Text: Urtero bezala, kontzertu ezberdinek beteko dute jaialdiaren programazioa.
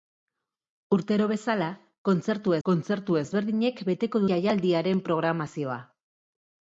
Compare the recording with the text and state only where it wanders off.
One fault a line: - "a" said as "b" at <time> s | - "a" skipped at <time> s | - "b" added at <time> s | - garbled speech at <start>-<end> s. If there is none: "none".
- "kontzertu" added at 2.7 s
- "dute" skipped at 4.2 s